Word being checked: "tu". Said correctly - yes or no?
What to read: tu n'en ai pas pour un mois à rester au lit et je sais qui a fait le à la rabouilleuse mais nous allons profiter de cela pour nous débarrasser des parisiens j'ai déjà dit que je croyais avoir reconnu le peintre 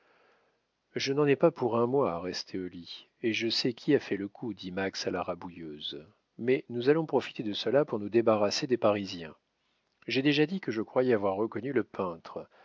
no